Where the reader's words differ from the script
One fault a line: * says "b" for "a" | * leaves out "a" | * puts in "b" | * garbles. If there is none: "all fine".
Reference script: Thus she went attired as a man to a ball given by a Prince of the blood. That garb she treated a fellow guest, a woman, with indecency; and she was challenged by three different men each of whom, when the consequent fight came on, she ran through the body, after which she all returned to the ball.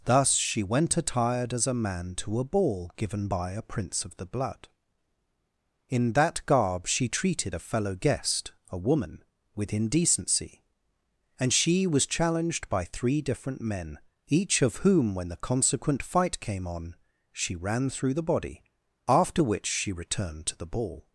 * puts in "In"
* leaves out "all"